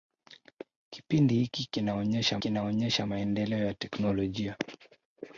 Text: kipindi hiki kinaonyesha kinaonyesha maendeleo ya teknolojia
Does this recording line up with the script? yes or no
yes